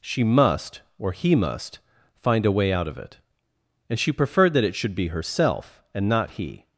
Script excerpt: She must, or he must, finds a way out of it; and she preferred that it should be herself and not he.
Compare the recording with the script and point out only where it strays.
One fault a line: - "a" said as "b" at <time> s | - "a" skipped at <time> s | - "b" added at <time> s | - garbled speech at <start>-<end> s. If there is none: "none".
- "finds" said as "find" at 2.1 s